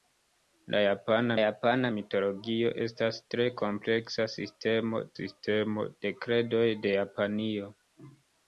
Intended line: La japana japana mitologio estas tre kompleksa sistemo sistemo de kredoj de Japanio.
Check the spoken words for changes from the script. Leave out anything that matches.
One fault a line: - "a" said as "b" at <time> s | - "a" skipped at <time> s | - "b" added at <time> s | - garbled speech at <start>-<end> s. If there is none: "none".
none